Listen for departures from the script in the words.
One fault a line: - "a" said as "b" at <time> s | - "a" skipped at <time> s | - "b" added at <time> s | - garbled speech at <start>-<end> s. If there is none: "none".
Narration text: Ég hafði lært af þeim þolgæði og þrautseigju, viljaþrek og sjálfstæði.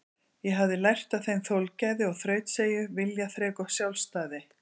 none